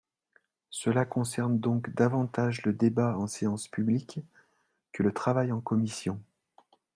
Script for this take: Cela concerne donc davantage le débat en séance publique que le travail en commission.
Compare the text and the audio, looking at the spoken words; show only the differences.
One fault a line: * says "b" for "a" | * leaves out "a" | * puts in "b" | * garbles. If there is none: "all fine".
all fine